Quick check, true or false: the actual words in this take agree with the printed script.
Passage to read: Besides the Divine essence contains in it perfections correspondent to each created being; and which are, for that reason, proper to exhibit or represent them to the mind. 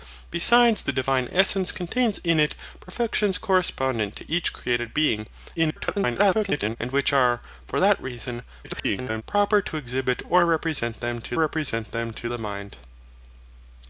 false